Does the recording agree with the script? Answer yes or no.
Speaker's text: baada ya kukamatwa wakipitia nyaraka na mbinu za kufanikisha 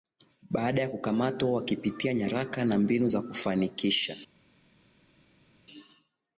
yes